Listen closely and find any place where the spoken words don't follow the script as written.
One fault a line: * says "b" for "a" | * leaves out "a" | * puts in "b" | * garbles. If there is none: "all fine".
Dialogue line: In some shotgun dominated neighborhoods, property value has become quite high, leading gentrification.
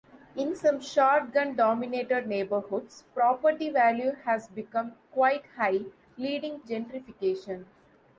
all fine